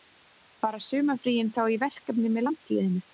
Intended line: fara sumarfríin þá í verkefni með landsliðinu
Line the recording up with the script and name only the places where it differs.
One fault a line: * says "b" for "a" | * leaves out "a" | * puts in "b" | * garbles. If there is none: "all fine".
all fine